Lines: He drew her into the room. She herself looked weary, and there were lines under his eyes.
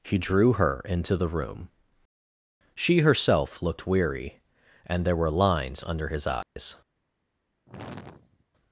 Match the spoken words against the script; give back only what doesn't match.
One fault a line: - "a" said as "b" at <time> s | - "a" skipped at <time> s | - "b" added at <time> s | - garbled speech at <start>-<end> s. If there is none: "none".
none